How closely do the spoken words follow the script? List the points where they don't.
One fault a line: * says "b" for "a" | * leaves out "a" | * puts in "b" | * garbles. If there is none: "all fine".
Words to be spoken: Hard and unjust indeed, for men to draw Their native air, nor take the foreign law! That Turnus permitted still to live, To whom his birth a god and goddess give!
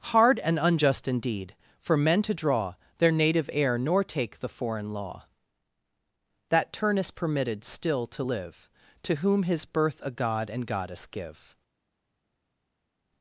all fine